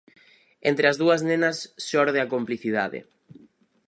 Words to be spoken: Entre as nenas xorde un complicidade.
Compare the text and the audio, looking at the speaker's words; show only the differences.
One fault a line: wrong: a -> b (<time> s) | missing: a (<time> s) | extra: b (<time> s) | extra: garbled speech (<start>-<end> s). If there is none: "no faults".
extra: dúas (1.0 s)
wrong: un -> a (2.2 s)